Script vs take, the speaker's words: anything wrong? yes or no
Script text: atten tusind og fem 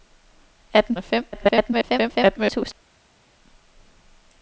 yes